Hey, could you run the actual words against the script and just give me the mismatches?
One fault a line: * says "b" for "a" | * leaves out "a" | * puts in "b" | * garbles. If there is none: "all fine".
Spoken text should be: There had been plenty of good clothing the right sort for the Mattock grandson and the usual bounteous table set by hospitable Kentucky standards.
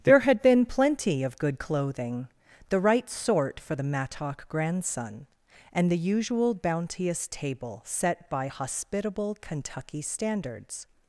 all fine